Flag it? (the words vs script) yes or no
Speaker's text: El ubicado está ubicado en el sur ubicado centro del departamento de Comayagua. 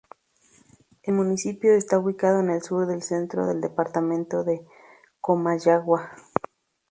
yes